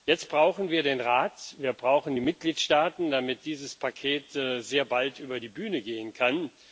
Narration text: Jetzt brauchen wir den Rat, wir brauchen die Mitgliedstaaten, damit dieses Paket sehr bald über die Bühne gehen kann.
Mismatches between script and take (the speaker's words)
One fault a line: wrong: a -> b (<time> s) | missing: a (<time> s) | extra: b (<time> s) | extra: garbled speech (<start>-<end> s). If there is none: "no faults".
no faults